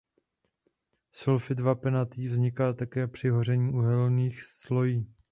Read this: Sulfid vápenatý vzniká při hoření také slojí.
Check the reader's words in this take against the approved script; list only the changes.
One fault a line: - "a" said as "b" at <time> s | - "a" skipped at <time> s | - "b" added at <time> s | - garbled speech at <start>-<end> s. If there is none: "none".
- "také" added at 2.7 s
- "také" said as "uhelných" at 3.7 s